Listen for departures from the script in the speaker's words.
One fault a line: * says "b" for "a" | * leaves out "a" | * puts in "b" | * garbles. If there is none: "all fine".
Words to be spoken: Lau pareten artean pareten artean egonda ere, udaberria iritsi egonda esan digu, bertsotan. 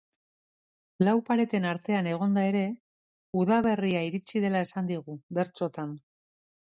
* leaves out "pareten artean"
* says "dela" for "egonda"